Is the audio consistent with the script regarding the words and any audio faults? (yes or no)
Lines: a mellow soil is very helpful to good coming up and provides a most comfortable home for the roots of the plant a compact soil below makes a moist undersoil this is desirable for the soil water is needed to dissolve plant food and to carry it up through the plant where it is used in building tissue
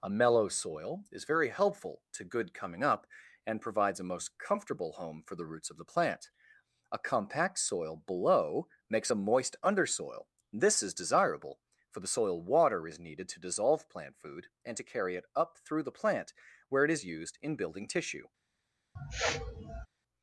no